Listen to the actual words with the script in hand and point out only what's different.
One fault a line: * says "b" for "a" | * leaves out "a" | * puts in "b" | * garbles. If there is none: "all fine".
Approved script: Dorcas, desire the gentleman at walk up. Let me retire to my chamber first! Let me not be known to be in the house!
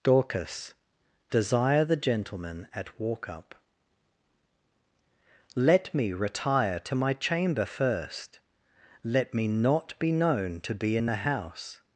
all fine